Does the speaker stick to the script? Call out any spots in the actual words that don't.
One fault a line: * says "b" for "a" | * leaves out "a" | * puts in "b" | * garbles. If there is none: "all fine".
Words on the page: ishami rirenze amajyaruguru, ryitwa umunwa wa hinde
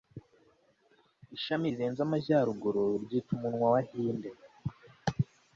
all fine